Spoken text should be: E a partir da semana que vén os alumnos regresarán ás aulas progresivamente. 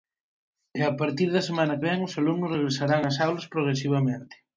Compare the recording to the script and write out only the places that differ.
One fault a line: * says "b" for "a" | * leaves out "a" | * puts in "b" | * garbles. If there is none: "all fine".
* leaves out "que"